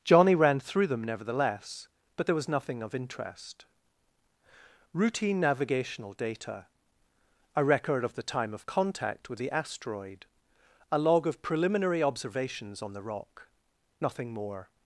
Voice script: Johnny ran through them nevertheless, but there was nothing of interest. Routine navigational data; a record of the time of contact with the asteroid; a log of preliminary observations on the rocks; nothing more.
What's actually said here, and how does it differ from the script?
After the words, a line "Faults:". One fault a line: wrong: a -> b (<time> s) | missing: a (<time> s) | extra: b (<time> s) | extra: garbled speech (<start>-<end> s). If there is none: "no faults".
Johnny ran through them nevertheless, but there was nothing of interest. Routine navigational data; a record of the time of contact with the asteroid; a log of preliminary observations on the rock; nothing more.
Faults:
wrong: rocks -> rock (13.0 s)